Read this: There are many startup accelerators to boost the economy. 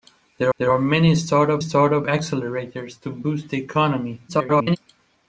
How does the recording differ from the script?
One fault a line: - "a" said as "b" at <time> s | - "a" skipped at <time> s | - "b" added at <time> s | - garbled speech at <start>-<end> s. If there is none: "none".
- "there" added at 0.6 s
- "startup" added at 1.6 s
- garbled speech at 4.3-4.8 s